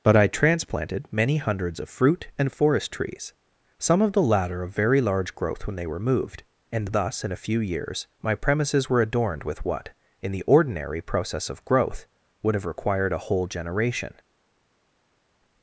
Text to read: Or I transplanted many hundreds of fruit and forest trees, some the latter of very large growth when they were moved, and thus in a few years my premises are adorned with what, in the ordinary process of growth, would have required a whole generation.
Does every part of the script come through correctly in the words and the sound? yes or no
no